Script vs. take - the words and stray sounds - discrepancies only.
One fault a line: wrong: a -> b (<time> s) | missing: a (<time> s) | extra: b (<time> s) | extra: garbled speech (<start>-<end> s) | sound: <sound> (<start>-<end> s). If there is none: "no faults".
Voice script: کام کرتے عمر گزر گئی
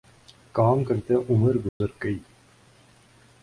sound: dropout (1.7-1.8 s)